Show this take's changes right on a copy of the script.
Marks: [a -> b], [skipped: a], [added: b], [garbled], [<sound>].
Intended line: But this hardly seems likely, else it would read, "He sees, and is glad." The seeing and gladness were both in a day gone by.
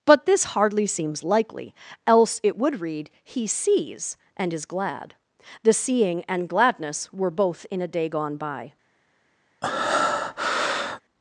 But this hardly seems likely, else it would read, "He sees, and is glad." The seeing and gladness were both in a day gone by. [breath]